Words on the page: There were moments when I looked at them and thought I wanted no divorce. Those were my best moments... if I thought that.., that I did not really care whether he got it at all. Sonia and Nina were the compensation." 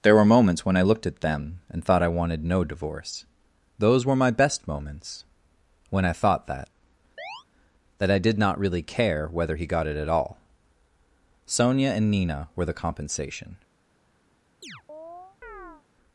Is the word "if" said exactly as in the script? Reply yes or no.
no